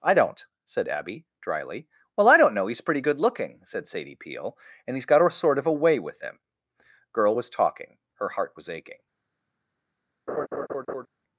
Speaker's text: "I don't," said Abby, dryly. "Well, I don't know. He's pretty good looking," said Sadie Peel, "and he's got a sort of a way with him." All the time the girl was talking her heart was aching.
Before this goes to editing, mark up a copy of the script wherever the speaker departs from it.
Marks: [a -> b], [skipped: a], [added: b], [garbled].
"I don't," said Abby, dryly. "Well, I don't know. He's pretty good looking," said Sadie Peel, "and he's got a sort of a way with him." [skipped: All the time the] girl was talking her heart was aching.